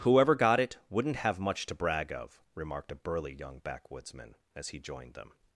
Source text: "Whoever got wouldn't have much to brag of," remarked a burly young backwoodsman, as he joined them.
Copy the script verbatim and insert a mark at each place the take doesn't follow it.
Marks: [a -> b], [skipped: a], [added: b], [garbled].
"Whoever got [added: it] wouldn't have much to brag of," remarked a burly young backwoodsman, as he joined them.